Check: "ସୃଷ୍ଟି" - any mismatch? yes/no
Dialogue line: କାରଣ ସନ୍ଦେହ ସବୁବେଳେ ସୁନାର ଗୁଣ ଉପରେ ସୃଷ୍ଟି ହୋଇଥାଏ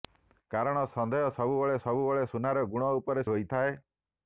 yes